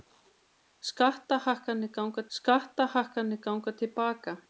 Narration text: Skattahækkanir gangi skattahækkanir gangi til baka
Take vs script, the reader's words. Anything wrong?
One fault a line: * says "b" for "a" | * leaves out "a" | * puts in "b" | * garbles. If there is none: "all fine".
all fine